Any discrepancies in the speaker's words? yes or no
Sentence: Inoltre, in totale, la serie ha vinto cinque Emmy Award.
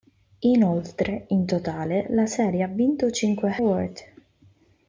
yes